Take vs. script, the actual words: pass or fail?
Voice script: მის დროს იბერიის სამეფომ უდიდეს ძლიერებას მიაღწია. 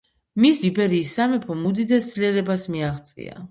fail